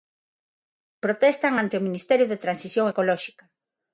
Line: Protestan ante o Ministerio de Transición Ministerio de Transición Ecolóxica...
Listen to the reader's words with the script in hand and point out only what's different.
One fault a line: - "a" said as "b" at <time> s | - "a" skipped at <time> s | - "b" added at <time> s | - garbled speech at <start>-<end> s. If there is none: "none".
- "Ministerio de Transición" skipped at 2.9 s